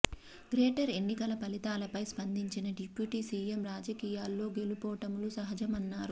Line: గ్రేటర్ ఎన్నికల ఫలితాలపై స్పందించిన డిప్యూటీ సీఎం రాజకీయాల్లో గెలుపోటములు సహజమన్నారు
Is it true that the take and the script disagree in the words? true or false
false